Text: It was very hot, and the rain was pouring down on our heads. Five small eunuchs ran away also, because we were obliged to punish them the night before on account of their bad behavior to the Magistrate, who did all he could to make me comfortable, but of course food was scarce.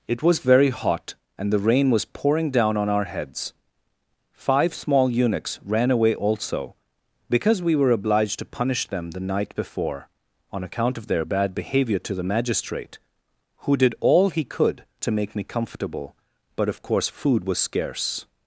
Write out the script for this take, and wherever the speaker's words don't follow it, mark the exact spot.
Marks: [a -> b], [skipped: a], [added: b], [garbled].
It was very hot, and the rain was pouring down on our heads. Five small eunuchs ran away also, because we were obliged to punish them the night before on account of their bad behavior to the Magistrate, who did all he could to make me comfortable, but of course food was scarce.